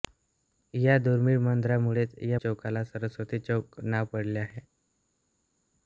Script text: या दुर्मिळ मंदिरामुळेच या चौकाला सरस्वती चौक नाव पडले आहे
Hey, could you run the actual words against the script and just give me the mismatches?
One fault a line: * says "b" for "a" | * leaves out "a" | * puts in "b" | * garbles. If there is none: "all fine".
all fine